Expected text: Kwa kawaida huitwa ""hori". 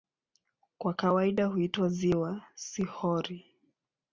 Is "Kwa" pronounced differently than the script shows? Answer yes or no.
no